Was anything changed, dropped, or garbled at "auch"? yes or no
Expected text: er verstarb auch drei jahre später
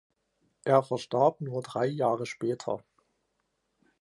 yes